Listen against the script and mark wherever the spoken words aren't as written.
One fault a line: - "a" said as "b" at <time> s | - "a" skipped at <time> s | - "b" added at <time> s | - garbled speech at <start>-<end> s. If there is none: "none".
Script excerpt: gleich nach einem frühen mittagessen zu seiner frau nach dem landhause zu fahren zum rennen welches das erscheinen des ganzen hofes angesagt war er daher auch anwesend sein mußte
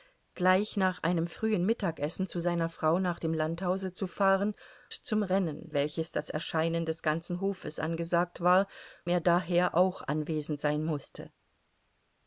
none